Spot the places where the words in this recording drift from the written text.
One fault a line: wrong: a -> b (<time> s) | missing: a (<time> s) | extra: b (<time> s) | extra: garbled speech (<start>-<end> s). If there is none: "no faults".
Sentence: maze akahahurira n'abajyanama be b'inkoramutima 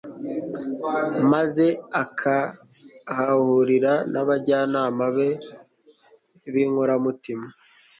no faults